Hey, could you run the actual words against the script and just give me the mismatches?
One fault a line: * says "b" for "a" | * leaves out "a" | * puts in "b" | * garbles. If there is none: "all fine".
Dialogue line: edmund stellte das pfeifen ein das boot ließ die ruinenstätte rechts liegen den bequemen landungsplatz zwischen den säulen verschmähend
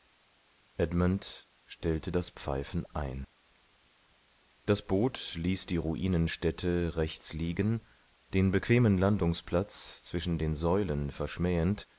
all fine